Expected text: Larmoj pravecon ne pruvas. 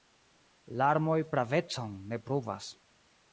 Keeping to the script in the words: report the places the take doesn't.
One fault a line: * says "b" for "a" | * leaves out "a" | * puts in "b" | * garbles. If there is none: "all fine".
all fine